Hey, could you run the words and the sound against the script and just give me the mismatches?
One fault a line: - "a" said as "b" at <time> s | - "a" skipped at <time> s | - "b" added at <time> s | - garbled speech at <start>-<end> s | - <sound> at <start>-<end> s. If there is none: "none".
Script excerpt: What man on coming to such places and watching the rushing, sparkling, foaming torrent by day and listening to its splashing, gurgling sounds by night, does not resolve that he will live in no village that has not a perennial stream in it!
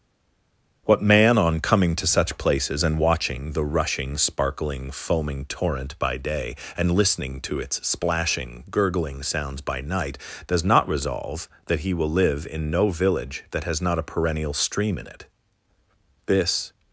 - "This" added at 16.3 s